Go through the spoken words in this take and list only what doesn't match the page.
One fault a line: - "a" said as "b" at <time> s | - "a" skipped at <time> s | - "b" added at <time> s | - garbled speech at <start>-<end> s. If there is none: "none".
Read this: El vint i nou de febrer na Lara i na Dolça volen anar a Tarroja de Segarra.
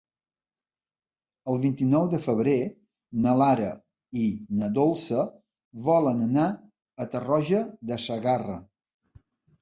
none